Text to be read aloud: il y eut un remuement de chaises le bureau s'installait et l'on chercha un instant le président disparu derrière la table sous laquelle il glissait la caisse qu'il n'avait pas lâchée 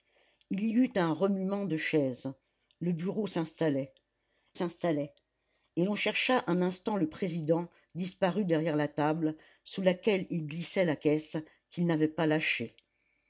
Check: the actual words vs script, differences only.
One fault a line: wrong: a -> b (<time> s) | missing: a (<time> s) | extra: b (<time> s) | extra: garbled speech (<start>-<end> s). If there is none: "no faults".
extra: s'installait (4.5 s)